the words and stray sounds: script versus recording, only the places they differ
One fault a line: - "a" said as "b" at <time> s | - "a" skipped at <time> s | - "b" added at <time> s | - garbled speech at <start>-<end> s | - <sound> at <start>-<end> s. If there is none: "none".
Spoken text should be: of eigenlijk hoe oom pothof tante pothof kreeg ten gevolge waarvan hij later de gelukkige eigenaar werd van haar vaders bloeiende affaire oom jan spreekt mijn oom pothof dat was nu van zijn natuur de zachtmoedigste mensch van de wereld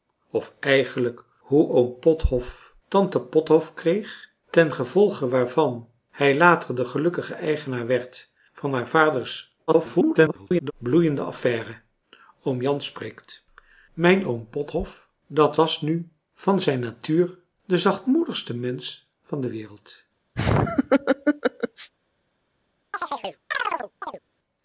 - garbled speech at 9.7-10.7 s
- laugh at 20.4-21.9 s
- chirp at 22.9-24.2 s